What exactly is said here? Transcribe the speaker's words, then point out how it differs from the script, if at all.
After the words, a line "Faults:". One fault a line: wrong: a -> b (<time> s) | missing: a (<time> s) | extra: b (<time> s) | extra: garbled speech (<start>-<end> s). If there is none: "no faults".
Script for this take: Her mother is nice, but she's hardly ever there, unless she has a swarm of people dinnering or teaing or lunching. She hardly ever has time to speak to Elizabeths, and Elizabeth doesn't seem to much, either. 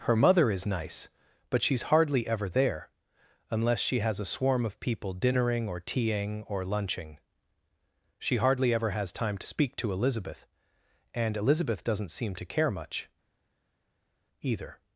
Her mother is nice, but she's hardly ever there, unless she has a swarm of people dinnering or teaing or lunching. She hardly ever has time to speak to Elizabeth, and Elizabeth doesn't seem to care much, either.
Faults:
wrong: Elizabeths -> Elizabeth (9.9 s)
extra: care (12.4 s)